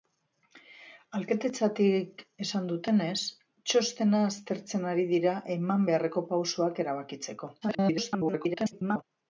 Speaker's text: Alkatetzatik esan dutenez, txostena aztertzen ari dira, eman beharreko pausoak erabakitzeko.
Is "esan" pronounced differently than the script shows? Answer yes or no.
no